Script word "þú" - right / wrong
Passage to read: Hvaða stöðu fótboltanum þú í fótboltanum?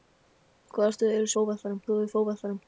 right